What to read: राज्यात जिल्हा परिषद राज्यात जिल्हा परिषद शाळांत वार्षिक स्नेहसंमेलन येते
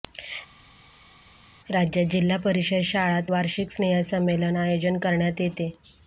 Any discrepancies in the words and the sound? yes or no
yes